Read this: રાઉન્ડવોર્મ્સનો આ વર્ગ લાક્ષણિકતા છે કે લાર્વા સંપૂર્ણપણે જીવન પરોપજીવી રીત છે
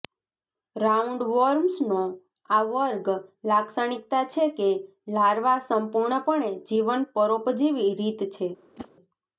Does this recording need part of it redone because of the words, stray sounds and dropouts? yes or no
yes